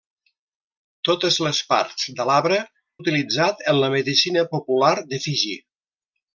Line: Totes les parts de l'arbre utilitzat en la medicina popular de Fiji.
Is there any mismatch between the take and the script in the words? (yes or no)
no